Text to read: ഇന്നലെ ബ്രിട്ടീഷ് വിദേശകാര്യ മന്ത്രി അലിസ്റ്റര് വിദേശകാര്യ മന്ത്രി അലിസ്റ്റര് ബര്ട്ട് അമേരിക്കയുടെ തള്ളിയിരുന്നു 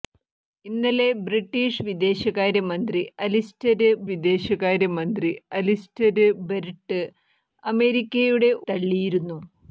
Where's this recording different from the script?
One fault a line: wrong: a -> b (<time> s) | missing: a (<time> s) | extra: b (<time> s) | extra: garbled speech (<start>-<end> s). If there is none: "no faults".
no faults